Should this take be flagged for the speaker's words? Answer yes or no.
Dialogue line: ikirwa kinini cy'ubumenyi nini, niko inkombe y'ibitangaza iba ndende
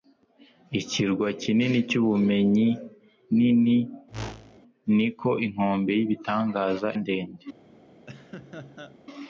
yes